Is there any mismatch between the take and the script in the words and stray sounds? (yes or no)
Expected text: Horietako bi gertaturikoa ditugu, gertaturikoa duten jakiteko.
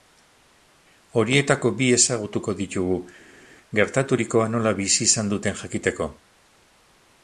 yes